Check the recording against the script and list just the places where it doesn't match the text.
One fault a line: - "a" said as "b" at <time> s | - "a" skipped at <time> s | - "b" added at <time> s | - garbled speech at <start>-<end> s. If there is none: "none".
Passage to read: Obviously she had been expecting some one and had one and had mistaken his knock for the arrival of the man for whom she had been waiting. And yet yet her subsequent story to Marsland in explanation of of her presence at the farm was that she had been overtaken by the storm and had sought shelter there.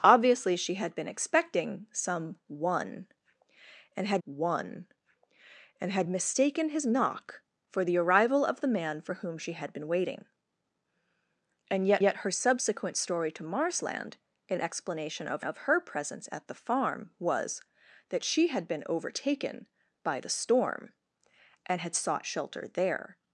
none